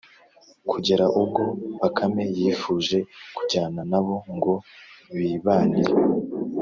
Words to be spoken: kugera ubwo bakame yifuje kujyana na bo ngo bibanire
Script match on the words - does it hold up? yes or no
yes